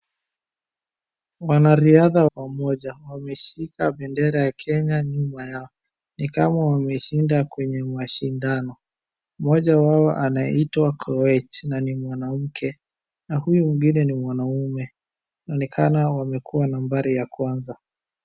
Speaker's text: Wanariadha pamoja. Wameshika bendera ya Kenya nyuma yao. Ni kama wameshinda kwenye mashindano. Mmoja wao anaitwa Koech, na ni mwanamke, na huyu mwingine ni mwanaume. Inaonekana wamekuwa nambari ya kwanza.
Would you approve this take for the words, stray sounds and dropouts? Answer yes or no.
yes